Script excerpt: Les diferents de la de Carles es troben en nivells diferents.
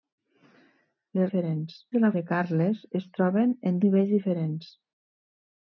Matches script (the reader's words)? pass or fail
pass